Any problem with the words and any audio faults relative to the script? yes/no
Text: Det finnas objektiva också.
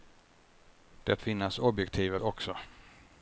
no